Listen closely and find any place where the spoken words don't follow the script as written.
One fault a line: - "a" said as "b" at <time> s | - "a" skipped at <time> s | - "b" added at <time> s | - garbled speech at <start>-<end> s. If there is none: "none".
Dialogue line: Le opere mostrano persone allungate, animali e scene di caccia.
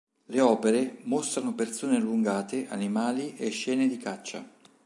none